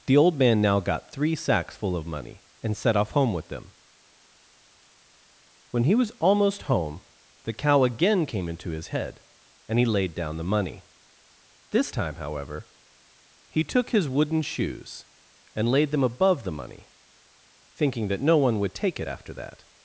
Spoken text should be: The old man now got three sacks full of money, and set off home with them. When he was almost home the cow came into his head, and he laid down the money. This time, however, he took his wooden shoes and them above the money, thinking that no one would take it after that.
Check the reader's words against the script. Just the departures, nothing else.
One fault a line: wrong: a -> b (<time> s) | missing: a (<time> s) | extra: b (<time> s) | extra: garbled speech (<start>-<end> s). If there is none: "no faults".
extra: again (7.8 s)
extra: laid (15.7 s)